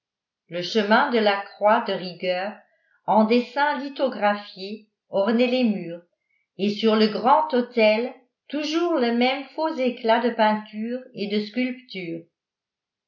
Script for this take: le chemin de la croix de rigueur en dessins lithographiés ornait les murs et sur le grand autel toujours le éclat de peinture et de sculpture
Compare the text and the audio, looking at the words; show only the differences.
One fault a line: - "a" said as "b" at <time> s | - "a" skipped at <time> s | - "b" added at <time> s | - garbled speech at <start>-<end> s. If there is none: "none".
- "même faux" added at 9.1 s